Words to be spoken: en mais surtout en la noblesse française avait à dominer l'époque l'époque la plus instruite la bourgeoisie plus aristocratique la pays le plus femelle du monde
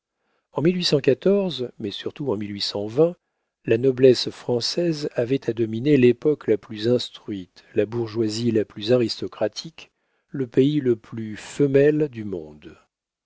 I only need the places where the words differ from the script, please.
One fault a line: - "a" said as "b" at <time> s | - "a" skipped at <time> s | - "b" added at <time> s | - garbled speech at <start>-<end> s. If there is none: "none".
- "l'époque" skipped at 6.5 s
- "la" added at 8.5 s
- "la" said as "le" at 10.3 s